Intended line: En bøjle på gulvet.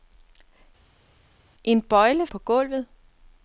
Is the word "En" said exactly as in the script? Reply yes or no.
yes